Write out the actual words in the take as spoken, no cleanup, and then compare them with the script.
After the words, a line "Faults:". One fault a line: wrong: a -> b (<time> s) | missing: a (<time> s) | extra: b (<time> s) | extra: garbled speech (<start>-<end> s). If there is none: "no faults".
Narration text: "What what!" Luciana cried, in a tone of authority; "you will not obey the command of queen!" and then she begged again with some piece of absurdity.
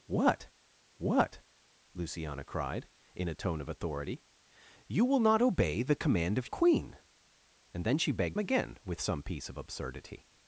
"What what!" Luciana cried, in a tone of authority; "you will not obey the command of queen!" and then she begged again with some piece of absurdity.
Faults:
no faults